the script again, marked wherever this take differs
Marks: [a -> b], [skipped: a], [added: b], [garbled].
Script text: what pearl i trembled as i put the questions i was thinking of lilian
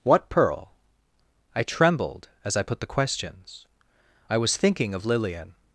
what pearl i trembled as i put the questions i was thinking of lilian